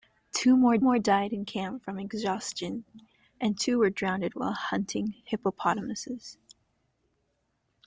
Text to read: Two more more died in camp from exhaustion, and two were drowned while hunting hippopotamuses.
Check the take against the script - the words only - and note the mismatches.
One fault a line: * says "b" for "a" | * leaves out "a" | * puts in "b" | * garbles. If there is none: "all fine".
all fine